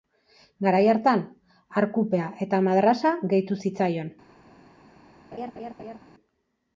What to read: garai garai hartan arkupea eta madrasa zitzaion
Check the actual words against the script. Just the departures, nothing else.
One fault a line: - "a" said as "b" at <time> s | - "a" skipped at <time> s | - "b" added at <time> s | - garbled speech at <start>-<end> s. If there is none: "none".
- "garai" skipped at 0.8 s
- "gehitu" added at 3.4 s